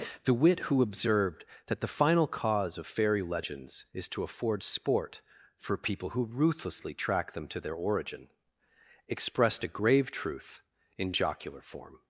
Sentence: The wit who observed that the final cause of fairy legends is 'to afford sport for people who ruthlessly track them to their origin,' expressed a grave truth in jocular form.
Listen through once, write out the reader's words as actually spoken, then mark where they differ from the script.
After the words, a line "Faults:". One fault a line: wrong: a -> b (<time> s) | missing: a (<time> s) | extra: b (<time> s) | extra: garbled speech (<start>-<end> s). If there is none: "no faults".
The wit who observed that the final cause of fairy legends is 'to afford sport for people who ruthlessly track them to their origin,' expressed a grave truth in jocular form.
Faults:
no faults